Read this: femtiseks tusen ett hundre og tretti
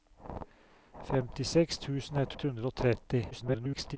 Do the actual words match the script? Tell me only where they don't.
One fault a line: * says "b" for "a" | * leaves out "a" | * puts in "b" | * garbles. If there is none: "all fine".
* puts in "ett"
* garbles